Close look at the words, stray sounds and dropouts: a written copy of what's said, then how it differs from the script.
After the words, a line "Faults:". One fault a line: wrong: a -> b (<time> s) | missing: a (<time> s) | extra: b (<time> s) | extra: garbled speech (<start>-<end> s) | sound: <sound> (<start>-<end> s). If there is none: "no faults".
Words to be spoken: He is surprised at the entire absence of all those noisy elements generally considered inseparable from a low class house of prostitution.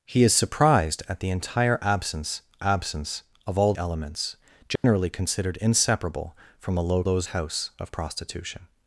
He is surprised at the entire absence absence of all elements generally considered inseparable from a low those house of prostitution.
Faults:
extra: absence (2.6 s)
missing: those noisy (3.7 s)
sound: dropout (4.8-4.8 s)
wrong: class -> those (7.0 s)